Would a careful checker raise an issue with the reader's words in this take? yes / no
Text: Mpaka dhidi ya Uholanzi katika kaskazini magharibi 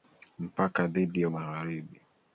yes